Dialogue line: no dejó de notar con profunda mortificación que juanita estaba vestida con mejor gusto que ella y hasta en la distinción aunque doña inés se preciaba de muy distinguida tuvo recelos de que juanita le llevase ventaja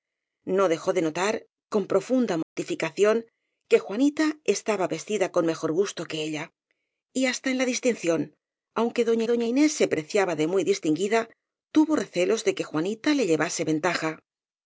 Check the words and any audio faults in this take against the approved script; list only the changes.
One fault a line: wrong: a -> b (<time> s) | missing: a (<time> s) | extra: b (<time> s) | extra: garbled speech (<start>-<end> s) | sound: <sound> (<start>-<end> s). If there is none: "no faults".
sound: dropout (2.4-2.6 s)
extra: doña (9.3 s)